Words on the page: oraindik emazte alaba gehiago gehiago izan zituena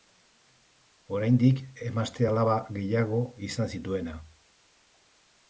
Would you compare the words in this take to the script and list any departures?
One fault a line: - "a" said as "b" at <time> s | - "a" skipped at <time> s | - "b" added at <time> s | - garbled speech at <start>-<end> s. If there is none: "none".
- "gehiago" skipped at 3.2 s